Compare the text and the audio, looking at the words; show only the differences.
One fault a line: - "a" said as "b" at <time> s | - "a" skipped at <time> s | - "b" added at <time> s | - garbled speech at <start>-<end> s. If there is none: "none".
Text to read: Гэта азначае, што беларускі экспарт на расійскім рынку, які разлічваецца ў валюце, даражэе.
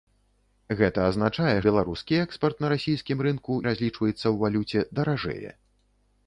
- "што" skipped at 1.6 s
- "які" skipped at 3.5 s